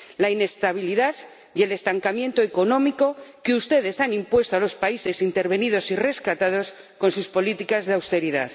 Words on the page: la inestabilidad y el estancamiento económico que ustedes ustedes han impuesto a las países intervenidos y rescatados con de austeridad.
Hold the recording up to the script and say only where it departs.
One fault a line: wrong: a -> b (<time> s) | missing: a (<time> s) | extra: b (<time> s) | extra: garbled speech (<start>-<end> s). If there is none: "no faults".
missing: ustedes (4.0 s)
wrong: las -> los (4.6 s)
extra: sus políticas (7.1 s)